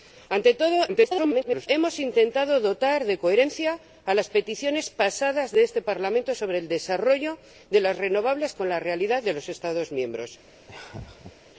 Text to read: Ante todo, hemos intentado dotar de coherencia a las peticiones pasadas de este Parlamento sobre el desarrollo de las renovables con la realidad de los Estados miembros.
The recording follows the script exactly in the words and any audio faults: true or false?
false